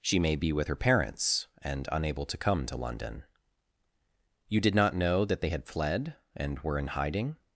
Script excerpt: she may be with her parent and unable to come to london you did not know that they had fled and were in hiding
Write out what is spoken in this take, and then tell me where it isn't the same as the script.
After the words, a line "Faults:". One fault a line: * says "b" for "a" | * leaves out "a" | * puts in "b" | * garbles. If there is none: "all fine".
she may be with her parents and unable to come to london you did not know that they had fled and were in hiding
Faults:
* says "parents" for "parent"